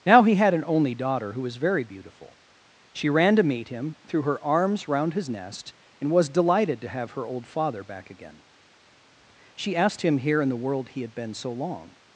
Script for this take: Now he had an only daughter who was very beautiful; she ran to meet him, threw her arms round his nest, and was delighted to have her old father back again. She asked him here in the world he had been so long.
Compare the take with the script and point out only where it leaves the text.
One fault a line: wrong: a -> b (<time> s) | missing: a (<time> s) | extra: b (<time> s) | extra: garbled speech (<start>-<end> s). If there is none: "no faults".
no faults